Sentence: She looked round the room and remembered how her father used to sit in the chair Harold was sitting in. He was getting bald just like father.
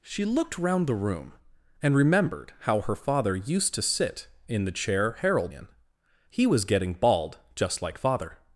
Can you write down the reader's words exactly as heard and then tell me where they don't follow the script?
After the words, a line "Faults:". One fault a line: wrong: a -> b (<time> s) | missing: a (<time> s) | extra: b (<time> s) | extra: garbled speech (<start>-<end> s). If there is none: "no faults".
She looked round the room and remembered how her father used to sit in the chair Harold in. He was getting bald just like father.
Faults:
missing: was sitting (5.5 s)